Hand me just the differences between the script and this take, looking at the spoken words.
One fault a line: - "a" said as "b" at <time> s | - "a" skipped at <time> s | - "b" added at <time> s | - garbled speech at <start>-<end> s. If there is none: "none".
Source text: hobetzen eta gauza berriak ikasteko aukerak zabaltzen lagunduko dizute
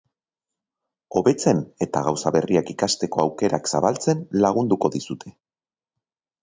none